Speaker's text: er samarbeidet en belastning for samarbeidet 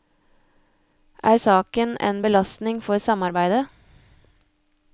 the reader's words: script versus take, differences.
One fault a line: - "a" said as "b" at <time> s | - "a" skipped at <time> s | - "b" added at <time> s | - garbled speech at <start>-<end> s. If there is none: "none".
- "samarbeidet" said as "saken" at 1.3 s